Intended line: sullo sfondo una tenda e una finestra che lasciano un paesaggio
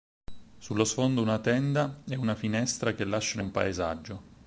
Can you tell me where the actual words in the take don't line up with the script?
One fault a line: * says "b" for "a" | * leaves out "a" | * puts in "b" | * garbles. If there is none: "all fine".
all fine